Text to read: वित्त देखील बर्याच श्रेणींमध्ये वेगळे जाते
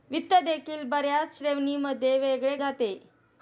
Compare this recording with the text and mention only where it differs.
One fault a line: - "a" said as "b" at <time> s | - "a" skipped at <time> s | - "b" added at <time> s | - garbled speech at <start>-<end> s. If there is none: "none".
none